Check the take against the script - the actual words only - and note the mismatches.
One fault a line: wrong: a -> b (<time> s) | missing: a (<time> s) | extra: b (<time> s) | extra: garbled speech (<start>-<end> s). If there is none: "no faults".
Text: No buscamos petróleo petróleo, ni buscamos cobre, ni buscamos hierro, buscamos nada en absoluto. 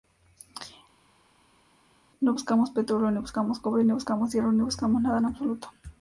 missing: petróleo (3.1 s)
extra: ni (4.5 s)